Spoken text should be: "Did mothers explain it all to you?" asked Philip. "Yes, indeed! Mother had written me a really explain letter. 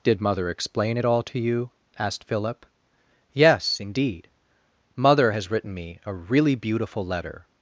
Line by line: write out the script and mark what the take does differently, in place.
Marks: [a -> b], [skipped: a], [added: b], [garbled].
"Did [mothers -> mother] explain it all to you?" asked Philip. "Yes, indeed! Mother [had -> has] written me a really [explain -> beautiful] letter.